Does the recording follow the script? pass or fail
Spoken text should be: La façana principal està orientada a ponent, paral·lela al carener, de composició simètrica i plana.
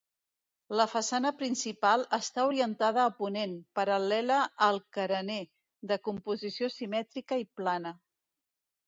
pass